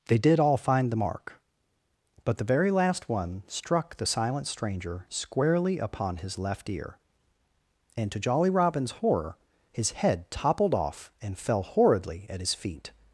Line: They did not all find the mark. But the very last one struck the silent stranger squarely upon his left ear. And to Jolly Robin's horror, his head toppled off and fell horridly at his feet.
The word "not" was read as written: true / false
false